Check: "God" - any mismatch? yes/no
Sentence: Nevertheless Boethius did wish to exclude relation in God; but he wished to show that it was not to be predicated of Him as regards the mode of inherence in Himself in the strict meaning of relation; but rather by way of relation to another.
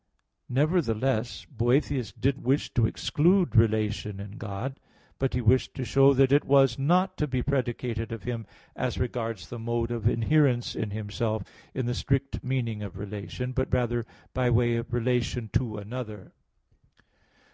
no